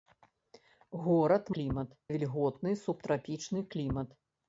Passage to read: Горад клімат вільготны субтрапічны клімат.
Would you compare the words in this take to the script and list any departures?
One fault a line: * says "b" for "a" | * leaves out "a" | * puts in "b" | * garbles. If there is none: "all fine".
all fine